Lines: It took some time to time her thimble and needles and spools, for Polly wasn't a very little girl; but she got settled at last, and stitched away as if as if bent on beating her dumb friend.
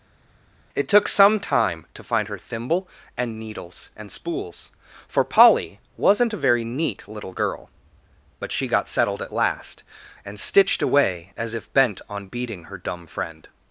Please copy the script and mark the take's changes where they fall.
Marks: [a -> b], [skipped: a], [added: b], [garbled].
It took some time to [time -> find] her thimble and needles and spools, for Polly wasn't a very [added: neat] little girl; but she got settled at last, and stitched away as if [skipped: as if] bent on beating her dumb friend.